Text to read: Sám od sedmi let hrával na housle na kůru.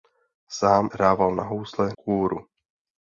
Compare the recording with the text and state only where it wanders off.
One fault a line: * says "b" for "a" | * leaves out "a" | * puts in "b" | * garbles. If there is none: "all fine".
* leaves out "od sedmi let"
* leaves out "na"